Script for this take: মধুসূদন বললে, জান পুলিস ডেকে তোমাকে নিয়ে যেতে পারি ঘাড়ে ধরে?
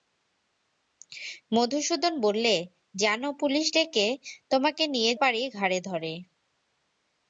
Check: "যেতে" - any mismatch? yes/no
yes